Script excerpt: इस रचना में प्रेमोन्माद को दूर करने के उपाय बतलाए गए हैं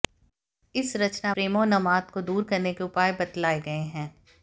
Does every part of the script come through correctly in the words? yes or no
no